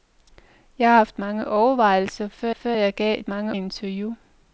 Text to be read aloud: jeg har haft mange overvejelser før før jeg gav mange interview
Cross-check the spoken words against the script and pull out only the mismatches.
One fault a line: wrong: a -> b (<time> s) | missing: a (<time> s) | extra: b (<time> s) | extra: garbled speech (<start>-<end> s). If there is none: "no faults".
no faults